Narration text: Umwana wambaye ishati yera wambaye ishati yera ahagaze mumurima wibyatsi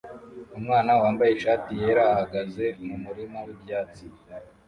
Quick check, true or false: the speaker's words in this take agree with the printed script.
false